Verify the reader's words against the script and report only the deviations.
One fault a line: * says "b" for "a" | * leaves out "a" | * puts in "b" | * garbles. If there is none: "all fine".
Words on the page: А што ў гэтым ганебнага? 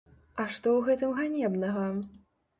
all fine